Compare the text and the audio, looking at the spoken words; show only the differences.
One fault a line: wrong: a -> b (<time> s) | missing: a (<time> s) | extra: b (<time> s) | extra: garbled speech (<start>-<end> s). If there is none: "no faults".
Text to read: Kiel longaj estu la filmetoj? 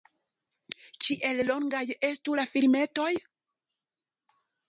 no faults